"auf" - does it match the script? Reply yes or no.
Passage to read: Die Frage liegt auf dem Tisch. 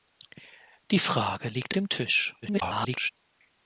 no